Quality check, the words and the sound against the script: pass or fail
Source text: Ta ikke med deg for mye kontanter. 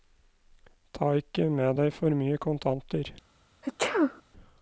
fail